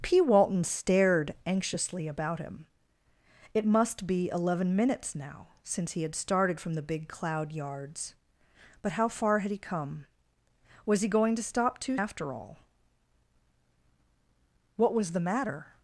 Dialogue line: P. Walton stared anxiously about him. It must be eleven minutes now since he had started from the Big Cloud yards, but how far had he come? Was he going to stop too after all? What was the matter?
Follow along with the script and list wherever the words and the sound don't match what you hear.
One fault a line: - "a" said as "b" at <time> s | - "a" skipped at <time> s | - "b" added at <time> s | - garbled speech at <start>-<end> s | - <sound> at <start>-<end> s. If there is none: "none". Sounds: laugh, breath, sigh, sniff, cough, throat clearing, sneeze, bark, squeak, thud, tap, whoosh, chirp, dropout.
none